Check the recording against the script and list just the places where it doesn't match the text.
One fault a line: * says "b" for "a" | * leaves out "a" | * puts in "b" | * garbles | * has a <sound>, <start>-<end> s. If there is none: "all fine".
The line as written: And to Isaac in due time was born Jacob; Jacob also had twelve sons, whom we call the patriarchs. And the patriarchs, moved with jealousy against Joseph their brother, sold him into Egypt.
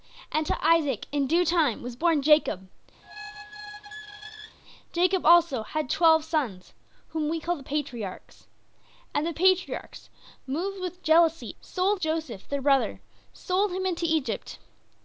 * has a squeak, 3.0-4.6 s
* says "sold" for "against"